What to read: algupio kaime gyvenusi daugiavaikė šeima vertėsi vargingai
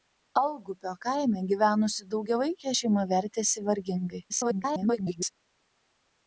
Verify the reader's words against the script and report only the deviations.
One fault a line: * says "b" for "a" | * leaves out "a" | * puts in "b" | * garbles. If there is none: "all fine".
* garbles